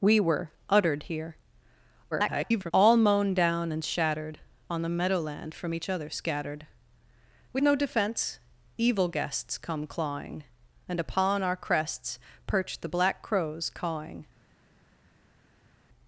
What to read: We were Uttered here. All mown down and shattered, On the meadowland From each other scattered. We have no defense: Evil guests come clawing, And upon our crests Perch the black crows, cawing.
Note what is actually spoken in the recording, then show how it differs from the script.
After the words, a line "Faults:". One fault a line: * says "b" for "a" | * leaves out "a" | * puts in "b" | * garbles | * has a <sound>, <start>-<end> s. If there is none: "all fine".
We were Uttered here. [garbled] All mown down and shattered, On the meadowland From each other scattered. We no defense: Evil guests come clawing, And upon our crests Perch the black crows, cawing.
Faults:
* garbles
* leaves out "have"